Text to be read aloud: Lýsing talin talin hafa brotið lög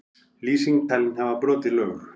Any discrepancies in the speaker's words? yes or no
yes